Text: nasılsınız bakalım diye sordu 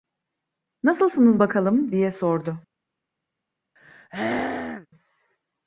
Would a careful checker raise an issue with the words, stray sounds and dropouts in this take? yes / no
yes